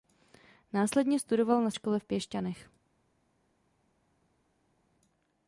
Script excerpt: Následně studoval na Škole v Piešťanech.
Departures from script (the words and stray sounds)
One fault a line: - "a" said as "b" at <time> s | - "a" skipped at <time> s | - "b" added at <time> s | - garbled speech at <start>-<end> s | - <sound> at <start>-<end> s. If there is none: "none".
none